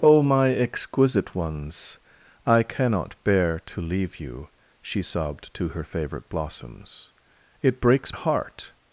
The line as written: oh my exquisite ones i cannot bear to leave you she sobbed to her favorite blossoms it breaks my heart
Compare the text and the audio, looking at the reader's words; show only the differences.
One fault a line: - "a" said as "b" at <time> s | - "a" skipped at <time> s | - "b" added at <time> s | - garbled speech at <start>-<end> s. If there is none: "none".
- "my" skipped at 8.1 s